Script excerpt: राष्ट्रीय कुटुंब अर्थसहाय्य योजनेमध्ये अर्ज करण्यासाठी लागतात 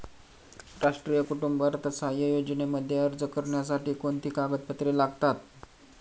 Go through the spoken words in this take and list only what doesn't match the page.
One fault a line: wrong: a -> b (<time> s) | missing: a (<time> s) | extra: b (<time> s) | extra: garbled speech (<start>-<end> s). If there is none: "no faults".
extra: कोणती कागदपत्रे (3.9 s)